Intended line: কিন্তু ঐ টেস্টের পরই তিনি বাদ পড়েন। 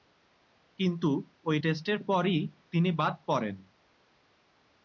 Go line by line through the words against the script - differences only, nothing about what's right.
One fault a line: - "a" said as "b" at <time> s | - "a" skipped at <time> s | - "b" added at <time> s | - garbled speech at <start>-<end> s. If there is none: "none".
none